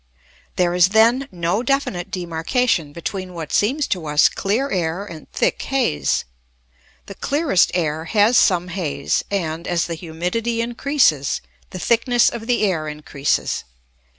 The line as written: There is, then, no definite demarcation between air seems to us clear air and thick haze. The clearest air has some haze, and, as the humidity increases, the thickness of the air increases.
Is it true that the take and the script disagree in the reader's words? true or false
true